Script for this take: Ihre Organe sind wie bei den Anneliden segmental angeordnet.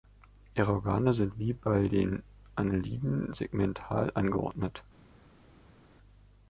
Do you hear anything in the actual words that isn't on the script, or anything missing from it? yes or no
no